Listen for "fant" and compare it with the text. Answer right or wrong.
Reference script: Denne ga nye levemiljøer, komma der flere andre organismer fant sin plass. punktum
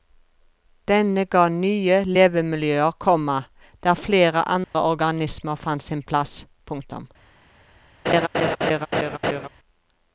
right